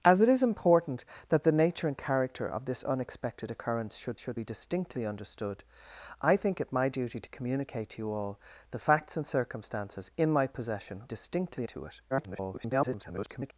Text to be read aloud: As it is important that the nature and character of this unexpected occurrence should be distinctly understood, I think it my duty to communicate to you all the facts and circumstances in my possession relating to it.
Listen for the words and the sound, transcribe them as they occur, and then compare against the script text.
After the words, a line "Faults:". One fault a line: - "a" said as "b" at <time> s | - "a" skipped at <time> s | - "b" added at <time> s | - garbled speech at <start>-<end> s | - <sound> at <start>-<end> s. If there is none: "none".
As it is important that the nature and character of this unexpected occurrence should should be distinctly understood, I think it my duty to communicate to you all the facts and circumstances in my possession distinctly to it. [garbled]
Faults:
- "should" added at 4.2 s
- "relating" said as "distinctly" at 11.1 s
- garbled speech at 12.1-13.5 s